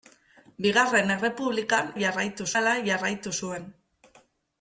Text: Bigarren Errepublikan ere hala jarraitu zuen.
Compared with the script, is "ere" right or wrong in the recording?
wrong